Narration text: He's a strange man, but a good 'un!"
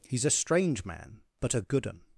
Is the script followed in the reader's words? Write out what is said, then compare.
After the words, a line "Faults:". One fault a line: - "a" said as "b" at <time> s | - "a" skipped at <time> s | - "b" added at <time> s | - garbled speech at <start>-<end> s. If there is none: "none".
He's a strange man, but a good 'un!"
Faults:
none